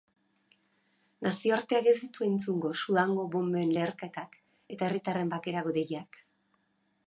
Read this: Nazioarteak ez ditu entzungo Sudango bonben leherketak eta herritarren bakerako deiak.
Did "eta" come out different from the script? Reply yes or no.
no